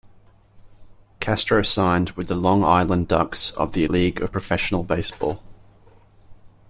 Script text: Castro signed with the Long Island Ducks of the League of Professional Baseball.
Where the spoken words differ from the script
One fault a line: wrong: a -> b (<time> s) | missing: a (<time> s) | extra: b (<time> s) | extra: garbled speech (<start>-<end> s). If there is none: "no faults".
no faults